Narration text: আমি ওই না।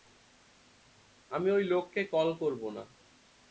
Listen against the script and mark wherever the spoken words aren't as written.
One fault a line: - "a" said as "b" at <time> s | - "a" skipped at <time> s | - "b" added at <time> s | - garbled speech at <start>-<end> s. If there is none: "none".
- "লোককে কল করব" added at 1.6 s